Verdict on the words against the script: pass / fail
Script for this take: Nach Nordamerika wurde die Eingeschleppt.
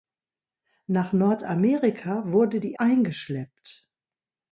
pass